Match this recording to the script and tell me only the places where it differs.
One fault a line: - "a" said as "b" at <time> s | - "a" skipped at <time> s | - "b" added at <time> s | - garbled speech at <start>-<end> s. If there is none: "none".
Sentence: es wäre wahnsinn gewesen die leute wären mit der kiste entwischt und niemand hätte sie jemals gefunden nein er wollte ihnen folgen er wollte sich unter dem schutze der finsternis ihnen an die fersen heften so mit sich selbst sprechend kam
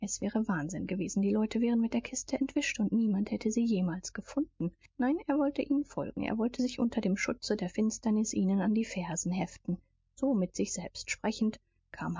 none